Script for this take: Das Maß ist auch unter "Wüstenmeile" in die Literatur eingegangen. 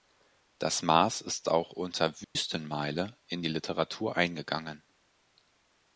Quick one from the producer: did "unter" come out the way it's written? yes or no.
yes